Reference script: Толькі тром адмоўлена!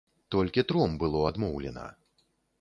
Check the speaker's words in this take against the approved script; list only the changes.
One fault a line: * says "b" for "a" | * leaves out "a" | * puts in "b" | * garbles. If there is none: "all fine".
* puts in "было"